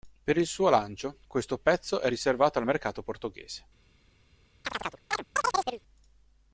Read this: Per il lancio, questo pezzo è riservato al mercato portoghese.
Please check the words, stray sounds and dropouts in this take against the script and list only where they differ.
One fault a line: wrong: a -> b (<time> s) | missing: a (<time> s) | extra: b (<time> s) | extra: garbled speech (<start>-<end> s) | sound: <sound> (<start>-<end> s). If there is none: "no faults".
extra: suo (0.5 s)
sound: chirp (4.6-5.8 s)